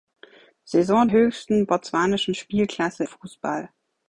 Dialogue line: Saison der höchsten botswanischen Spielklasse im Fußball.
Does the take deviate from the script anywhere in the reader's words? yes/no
yes